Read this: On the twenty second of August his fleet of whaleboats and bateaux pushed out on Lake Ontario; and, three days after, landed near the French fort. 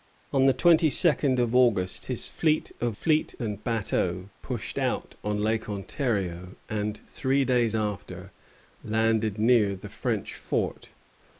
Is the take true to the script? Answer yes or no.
no